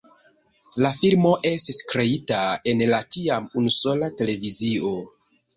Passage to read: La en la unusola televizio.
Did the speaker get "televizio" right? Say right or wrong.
right